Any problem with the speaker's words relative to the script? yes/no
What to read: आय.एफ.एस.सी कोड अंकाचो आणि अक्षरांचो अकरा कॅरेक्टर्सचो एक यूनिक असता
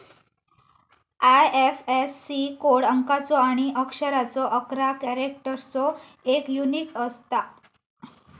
no